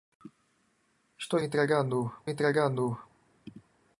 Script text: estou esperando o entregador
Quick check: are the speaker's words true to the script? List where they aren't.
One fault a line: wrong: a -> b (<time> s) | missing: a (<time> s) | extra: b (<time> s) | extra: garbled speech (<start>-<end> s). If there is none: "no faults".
wrong: esperando -> entregador (1.4 s)